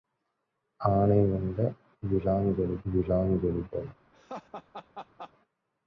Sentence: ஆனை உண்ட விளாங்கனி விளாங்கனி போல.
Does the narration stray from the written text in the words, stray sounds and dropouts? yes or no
yes